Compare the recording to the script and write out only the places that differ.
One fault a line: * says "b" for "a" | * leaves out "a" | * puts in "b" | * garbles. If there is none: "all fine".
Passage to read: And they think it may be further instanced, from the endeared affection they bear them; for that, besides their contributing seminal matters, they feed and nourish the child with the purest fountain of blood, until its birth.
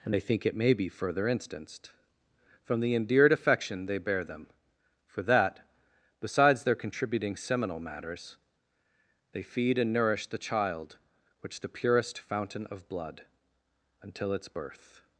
* says "which" for "with"